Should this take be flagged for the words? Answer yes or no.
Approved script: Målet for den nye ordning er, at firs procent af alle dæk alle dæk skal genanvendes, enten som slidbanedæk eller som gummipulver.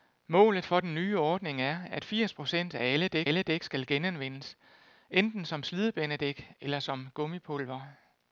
no